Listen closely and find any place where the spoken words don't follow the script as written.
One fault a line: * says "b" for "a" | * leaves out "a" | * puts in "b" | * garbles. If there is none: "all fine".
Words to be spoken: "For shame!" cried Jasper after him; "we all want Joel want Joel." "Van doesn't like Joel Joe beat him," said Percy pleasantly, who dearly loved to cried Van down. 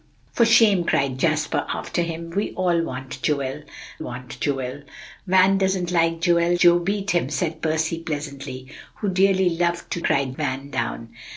all fine